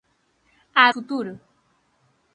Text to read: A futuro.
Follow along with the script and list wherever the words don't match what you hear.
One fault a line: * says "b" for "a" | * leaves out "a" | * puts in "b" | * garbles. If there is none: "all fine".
all fine